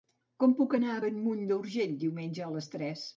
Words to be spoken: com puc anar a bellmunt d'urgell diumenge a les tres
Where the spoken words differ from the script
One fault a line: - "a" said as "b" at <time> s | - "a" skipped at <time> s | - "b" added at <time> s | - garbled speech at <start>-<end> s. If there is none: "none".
none